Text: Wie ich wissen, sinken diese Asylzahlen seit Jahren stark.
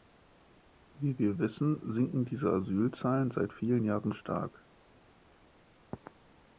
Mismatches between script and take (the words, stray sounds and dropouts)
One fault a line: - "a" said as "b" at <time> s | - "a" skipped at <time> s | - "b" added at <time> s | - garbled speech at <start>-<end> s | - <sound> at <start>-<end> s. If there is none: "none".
- "ich" said as "wir" at 1.2 s
- "vielen" added at 3.5 s